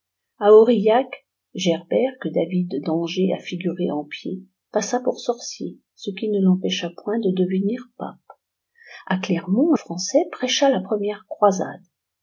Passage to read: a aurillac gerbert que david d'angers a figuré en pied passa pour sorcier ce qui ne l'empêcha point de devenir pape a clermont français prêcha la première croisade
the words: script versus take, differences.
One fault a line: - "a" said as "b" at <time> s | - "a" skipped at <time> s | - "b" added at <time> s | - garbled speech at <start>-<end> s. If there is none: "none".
none